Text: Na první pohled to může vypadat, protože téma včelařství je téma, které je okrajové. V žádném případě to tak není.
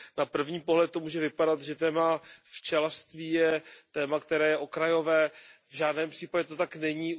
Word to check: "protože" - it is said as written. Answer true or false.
false